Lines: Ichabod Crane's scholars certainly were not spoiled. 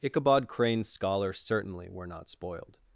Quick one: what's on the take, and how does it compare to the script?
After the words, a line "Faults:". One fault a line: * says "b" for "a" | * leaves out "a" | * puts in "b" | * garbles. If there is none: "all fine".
Ichabod Crane's scholars certainly were not spoiled.
Faults:
all fine